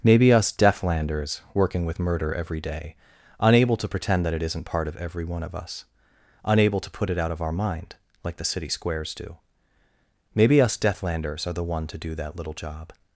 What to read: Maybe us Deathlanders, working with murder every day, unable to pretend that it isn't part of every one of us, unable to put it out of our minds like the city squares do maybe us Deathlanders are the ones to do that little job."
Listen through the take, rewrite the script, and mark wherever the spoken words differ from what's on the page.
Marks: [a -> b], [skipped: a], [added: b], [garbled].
Maybe us Deathlanders, working with murder every day, unable to pretend that it isn't part of every one of us, unable to put it out of our [minds -> mind] like the city squares do maybe us Deathlanders are the [ones -> one] to do that little job."